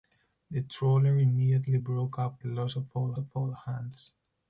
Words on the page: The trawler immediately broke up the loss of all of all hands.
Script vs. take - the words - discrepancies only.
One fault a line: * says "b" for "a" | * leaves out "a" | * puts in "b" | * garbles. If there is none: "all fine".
all fine